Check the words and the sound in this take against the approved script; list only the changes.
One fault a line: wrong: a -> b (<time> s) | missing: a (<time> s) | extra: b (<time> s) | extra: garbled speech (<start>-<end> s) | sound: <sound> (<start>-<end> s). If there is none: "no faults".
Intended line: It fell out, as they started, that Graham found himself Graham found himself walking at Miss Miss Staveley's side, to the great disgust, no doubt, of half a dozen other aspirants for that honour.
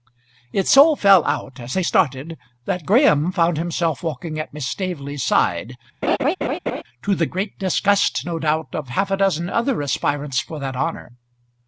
extra: so (0.7 s)
missing: Graham found himself (4.0 s)
missing: Miss (4.6 s)
sound: laugh (6.0-6.8 s)